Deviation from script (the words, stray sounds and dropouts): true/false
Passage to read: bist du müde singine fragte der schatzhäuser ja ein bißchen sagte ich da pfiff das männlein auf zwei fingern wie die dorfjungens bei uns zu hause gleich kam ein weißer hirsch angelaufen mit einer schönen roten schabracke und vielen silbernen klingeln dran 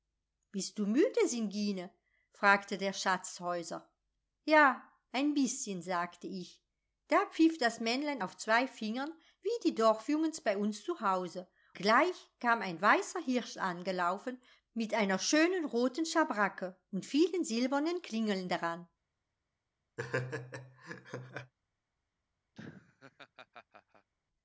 true